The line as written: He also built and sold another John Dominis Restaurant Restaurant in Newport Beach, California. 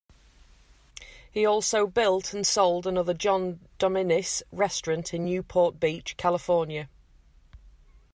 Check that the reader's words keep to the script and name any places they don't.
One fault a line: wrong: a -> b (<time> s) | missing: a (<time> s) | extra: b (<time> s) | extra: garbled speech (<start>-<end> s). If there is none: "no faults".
missing: Restaurant (5.1 s)